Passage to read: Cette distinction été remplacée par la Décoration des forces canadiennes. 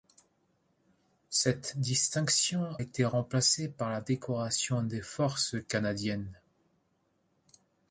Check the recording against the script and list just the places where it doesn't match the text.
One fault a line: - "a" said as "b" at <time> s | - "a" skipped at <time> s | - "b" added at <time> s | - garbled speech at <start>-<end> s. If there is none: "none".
none